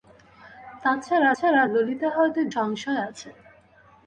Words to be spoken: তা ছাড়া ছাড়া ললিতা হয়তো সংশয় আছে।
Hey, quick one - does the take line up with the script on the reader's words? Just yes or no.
yes